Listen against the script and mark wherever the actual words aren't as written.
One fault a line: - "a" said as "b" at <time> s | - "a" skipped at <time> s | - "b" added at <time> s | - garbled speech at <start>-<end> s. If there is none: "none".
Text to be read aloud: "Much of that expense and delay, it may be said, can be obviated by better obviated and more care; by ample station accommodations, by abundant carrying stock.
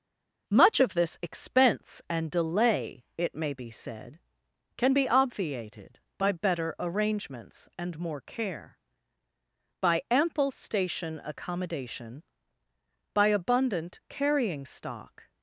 - "that" said as "this" at 0.9 s
- "obviated" said as "arrangements" at 6.8 s
- "accommodations" said as "accommodation" at 11.2 s